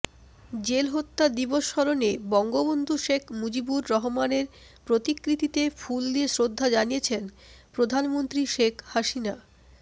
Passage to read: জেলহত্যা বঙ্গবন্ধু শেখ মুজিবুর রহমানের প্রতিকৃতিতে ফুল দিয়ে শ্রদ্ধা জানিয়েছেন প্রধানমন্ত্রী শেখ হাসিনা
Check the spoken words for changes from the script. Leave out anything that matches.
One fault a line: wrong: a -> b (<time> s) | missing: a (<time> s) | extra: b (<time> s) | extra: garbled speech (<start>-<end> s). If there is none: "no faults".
extra: দিবস স্মরণে (1.4 s)